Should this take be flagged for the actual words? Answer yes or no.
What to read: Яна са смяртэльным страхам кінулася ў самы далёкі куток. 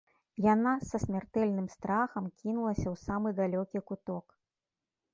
no